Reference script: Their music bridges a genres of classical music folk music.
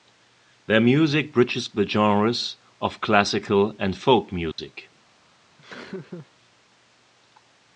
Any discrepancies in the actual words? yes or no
yes